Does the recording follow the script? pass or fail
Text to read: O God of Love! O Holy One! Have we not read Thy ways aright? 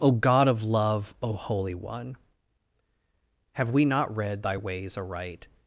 pass